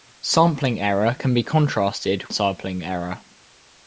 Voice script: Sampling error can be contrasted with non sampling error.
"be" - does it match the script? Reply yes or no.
yes